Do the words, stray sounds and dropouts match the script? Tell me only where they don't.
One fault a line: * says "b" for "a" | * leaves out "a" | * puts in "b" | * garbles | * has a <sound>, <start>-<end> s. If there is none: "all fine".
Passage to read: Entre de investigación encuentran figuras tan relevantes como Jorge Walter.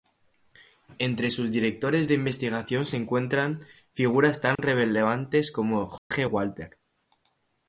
* puts in "sus directores"
* puts in "se"
* has a dropout, 4.6-4.6 s
* has a dropout, 6.0-6.1 s